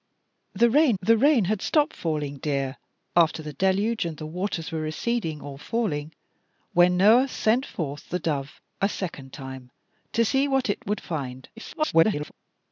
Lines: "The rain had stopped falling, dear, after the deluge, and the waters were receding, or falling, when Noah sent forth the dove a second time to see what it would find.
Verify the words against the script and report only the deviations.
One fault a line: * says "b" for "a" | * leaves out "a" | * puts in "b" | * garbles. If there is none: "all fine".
* puts in "the rain"
* garbles